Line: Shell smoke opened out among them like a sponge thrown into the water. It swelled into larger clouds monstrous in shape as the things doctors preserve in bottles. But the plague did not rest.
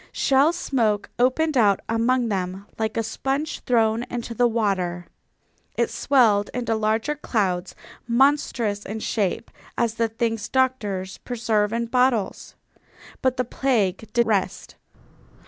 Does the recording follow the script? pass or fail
fail